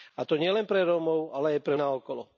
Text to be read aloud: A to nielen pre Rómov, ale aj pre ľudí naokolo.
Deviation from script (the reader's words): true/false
true